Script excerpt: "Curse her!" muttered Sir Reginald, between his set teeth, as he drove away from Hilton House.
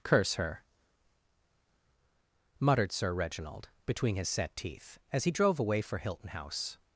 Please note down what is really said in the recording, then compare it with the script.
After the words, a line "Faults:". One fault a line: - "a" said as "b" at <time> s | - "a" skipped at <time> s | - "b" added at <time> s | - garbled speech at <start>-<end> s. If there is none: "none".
"Curse her!" muttered Sir Reginald, between his set teeth, as he drove away for Hilton House.
Faults:
- "from" said as "for" at 5.8 s